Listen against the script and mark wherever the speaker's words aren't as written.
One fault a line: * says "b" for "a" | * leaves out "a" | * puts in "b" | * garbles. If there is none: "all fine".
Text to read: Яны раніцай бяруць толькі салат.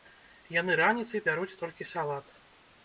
all fine